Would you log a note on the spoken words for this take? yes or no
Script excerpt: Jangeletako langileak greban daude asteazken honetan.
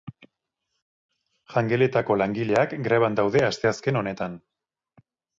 no